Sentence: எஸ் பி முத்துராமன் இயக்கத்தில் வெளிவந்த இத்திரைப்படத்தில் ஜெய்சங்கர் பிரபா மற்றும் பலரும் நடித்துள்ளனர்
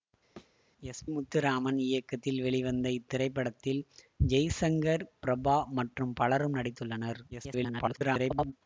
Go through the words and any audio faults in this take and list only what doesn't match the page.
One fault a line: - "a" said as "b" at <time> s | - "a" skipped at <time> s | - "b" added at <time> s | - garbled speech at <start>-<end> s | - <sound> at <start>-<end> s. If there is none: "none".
- thud at 0.4-0.6 s
- "பி" skipped at 1.0 s
- garbled speech at 7.3-8.5 s